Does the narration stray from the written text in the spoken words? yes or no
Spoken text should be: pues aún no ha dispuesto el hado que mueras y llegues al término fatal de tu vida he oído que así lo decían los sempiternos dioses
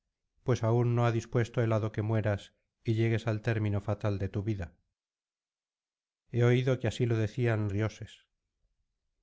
yes